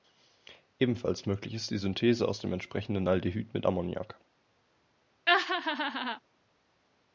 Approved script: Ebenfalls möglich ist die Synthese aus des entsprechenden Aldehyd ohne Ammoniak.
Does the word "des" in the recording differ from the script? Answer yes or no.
yes